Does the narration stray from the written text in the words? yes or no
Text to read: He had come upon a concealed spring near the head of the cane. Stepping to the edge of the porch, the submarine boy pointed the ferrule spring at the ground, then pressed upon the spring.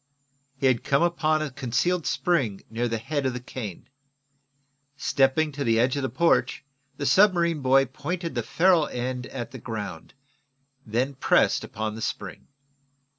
yes